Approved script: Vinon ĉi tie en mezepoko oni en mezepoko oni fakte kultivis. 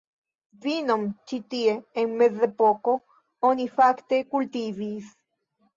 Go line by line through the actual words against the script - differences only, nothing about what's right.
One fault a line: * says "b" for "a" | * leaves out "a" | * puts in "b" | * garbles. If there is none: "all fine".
* leaves out "en mezepoko oni"